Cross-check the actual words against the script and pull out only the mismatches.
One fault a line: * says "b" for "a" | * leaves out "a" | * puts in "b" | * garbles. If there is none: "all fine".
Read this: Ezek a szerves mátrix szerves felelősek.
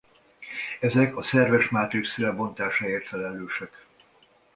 * says "lebontásáért" for "szerves"